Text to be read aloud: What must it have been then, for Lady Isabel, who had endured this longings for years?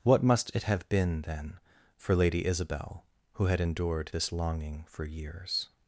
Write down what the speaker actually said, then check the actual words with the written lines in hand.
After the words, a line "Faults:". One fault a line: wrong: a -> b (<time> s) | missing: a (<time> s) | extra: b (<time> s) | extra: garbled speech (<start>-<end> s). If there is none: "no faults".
What must it have been then, for Lady Isabel, who had endured this longing for years?
Faults:
wrong: longings -> longing (4.3 s)